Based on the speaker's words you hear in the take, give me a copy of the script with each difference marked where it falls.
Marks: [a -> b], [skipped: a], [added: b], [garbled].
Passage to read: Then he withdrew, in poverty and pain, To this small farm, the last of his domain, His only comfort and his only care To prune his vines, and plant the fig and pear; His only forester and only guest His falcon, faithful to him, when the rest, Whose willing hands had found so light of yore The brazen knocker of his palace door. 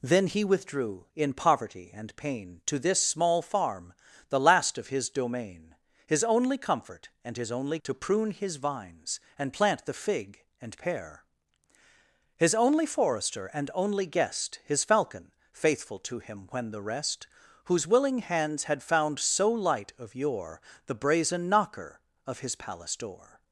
Then he withdrew, in poverty and pain, To this small farm, the last of his domain, His only comfort and his only [skipped: care] To prune his vines, and plant the fig and pear; His only forester and only guest His falcon, faithful to him, when the rest, Whose willing hands had found so light of yore The brazen knocker of his palace door.